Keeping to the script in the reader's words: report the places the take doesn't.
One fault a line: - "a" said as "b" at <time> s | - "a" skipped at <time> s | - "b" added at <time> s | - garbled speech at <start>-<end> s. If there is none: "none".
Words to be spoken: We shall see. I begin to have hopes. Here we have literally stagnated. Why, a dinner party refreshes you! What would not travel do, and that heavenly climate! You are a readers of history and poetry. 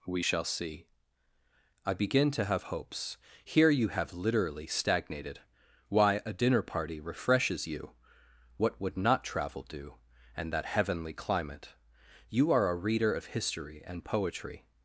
- "we" said as "you" at 3.7 s
- "readers" said as "reader" at 12.7 s